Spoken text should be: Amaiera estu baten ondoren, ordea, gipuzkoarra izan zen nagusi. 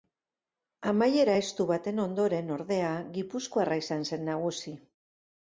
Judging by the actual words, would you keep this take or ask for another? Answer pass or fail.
pass